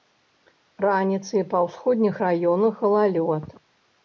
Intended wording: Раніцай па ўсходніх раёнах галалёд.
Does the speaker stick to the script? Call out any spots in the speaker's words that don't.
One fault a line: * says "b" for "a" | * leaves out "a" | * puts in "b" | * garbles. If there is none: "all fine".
all fine